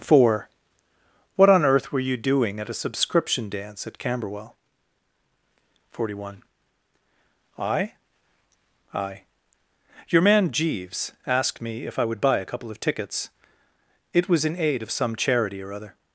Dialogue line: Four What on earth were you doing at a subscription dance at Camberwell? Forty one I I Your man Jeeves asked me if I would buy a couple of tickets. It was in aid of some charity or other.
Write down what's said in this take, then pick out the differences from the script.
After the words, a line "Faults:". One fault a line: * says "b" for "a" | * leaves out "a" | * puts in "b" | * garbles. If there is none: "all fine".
Four What on earth were you doing at a subscription dance at Camberwell? Forty one I I Your man Jeeves asked me if I would buy a couple of tickets. It was in aid of some charity or other.
Faults:
all fine